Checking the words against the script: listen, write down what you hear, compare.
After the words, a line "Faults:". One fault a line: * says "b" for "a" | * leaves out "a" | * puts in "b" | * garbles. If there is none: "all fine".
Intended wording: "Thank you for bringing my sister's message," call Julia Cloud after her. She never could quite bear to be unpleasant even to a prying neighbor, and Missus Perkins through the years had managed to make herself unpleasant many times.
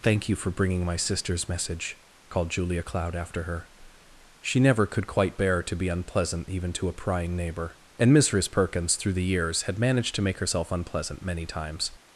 "Thank you for bringing my sister's message," called Julia Cloud after her. She never could quite bear to be unpleasant even to a prying neighbor, and Missus Perkins through the years had managed to make herself unpleasant many times.
Faults:
* says "called" for "call"